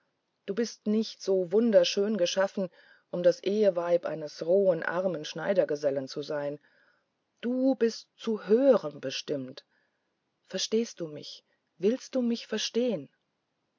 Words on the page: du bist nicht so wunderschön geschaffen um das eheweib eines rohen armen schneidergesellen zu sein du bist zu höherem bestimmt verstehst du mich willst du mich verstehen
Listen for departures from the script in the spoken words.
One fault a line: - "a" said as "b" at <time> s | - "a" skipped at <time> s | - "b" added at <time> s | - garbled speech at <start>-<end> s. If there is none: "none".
none